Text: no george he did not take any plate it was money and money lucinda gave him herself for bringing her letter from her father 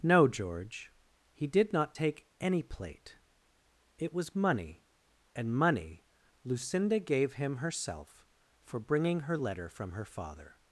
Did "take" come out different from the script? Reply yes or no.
no